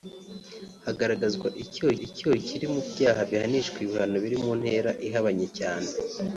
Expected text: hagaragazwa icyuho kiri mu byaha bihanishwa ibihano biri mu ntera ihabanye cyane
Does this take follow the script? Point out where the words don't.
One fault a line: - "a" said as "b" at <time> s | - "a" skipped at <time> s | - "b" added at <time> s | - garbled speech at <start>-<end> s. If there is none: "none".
- "icyuho" added at 2.1 s